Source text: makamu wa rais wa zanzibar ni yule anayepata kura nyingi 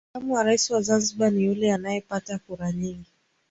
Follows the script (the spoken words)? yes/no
yes